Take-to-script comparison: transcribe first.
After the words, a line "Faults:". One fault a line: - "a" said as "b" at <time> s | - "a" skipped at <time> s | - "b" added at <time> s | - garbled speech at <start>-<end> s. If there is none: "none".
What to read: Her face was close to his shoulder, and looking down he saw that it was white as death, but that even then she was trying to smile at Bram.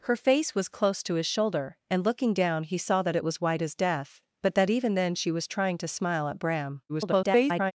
Her face was close to his shoulder, and looking down he saw that it was white as death, but that even then she was trying to smile at Bram. [garbled]
Faults:
- garbled speech at 6.9-7.7 s